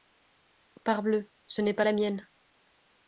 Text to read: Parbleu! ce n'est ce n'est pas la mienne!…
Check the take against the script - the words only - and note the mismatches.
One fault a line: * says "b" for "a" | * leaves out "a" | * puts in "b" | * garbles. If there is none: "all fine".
* leaves out "ce n'est"